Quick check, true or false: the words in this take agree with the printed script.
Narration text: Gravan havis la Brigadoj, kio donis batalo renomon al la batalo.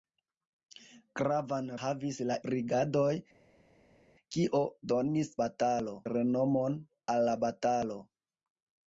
true